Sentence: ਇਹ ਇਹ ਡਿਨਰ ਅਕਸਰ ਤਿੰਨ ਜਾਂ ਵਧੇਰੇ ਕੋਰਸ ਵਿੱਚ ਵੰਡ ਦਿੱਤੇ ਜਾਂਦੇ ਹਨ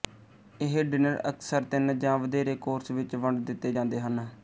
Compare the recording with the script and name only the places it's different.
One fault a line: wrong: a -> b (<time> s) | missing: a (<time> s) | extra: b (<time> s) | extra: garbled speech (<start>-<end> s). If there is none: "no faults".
missing: ਇਹ (0.8 s)